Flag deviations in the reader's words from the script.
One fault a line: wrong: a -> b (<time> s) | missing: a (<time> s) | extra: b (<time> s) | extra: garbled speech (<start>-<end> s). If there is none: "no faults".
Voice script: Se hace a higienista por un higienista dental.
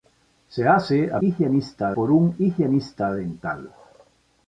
no faults